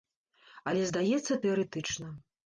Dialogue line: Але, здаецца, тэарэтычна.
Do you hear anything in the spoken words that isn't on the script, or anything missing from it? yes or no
no